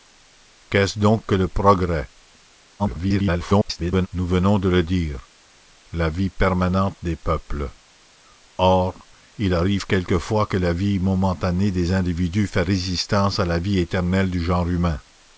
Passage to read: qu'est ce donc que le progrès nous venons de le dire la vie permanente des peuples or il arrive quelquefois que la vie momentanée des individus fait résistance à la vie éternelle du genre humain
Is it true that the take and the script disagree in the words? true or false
true